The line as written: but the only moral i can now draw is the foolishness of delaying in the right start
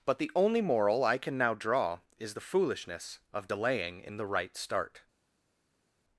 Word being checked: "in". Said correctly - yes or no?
yes